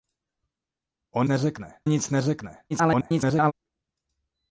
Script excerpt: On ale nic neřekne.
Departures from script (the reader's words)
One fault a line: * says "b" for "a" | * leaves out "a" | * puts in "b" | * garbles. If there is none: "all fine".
* says "neřekne" for "ale"
* garbles